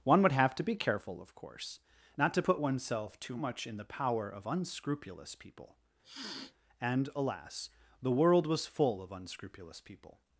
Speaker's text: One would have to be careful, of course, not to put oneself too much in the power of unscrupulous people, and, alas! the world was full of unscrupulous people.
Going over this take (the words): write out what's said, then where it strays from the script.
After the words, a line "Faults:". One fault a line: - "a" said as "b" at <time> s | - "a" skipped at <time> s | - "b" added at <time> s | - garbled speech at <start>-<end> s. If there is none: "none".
One would have to be careful, of course, not to put oneself too much in the power of unscrupulous people, and, alas! the world was full of unscrupulous people.
Faults:
none